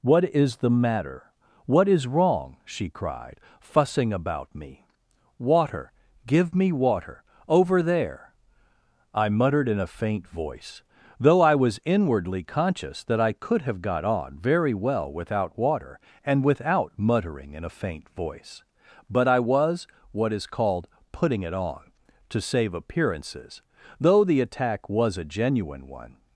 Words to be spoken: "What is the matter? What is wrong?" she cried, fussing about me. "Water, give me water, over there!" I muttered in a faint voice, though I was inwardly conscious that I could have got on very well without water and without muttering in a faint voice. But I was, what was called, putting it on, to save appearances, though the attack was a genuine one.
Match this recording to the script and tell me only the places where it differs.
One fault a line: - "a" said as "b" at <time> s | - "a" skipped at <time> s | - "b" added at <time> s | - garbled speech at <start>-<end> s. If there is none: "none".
- "was" said as "is" at 20.3 s